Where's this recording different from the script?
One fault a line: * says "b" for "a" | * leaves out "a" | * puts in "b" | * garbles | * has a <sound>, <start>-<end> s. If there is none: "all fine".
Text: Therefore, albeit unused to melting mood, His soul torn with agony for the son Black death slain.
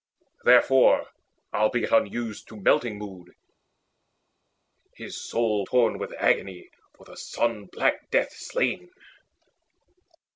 all fine